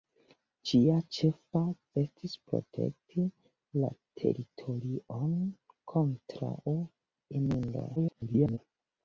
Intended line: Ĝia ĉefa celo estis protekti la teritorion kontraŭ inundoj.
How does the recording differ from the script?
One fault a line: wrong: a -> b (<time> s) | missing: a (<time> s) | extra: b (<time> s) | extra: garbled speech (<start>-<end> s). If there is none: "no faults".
missing: celo (1.6 s)
extra: garbled speech (8.0-8.6 s)